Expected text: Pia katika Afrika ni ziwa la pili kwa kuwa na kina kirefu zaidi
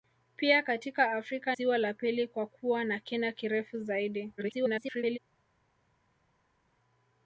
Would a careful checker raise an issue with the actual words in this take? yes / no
yes